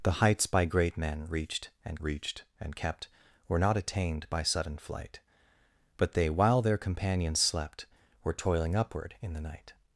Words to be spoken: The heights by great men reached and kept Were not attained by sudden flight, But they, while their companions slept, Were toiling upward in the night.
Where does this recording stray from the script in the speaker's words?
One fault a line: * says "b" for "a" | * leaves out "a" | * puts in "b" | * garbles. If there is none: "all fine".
* puts in "reached and"